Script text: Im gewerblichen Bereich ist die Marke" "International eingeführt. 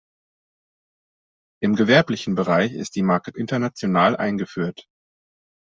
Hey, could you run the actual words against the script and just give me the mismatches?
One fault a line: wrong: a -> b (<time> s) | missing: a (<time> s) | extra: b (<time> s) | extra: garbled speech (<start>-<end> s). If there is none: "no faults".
no faults